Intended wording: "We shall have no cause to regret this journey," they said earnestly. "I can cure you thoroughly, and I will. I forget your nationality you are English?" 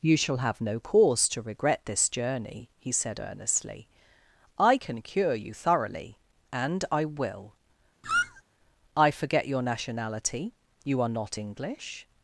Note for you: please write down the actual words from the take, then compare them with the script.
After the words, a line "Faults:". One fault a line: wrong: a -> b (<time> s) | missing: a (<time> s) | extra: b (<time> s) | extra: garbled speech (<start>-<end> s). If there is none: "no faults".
"You shall have no cause to regret this journey," he said earnestly. "I can cure you thoroughly, and I will. I forget your nationality you are not English?"
Faults:
wrong: We -> You (0.0 s)
wrong: they -> he (2.8 s)
extra: not (11.1 s)